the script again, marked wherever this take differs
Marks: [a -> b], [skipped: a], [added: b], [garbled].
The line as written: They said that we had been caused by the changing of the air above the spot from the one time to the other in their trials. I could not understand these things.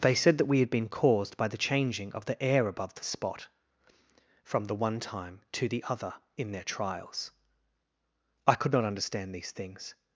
They said that we had been caused by the changing of the air above the spot from the one time to the other in their trials. I could not understand these things.